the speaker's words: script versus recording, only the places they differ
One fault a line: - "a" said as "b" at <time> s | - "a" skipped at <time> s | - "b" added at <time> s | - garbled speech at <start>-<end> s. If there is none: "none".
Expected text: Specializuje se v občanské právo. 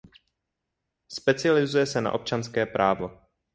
- "v" said as "na" at 2.0 s